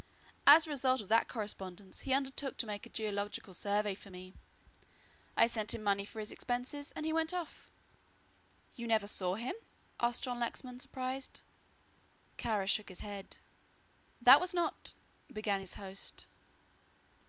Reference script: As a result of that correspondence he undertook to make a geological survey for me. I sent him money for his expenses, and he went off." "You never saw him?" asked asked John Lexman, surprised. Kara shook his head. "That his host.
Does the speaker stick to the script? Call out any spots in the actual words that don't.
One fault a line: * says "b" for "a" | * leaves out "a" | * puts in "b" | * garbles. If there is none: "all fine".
* leaves out "asked"
* puts in "was not began"